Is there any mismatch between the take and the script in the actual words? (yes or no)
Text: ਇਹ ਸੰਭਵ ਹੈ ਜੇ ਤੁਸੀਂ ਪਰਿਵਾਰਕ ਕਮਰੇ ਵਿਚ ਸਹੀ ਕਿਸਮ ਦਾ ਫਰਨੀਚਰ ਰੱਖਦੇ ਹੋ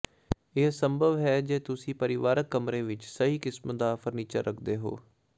no